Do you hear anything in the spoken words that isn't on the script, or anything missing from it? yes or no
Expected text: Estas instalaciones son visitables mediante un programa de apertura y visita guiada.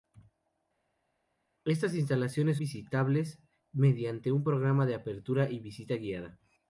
yes